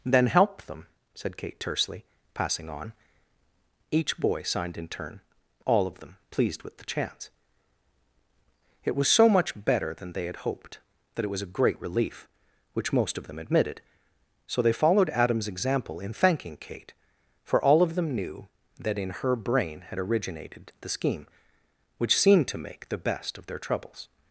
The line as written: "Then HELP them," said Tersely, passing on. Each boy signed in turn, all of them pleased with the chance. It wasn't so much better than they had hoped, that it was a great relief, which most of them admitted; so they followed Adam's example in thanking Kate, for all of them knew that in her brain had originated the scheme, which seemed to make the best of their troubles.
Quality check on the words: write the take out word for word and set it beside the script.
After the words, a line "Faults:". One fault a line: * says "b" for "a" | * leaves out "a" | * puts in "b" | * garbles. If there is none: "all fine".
"Then HELP them," said Kate tersely, passing on. Each boy signed in turn, all of them pleased with the chance. It was so much better than they had hoped, that it was a great relief, which most of them admitted; so they followed Adam's example in thanking Kate, for all of them knew that in her brain had originated the scheme, which seemed to make the best of their troubles.
Faults:
* puts in "Kate"
* says "was" for "wasn't"